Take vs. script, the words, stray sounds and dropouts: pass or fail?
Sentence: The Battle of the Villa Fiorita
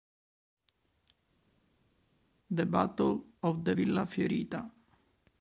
pass